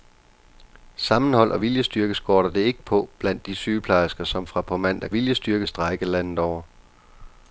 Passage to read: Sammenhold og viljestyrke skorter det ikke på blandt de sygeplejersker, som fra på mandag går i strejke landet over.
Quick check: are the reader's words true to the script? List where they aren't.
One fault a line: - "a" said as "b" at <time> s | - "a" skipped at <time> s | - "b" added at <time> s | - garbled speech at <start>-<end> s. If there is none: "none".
- "går" said as "viljestyrke" at 5.1 s